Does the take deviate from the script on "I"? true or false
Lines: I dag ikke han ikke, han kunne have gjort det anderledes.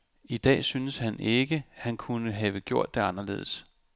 false